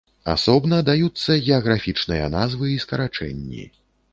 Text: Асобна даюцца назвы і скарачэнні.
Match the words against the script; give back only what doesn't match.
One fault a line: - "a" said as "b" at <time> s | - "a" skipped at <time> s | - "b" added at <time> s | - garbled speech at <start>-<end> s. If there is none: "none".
- "геаграфічныя" added at 1.5 s